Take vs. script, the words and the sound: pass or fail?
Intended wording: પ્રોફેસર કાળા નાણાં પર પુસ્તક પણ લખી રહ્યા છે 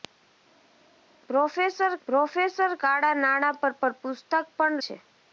fail